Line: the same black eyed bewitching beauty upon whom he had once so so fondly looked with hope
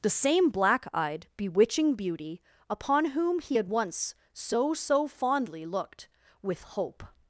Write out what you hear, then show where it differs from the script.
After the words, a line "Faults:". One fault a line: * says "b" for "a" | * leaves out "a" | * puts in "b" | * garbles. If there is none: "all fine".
the same black eyed bewitching beauty upon whom he had once so so fondly looked with hope
Faults:
all fine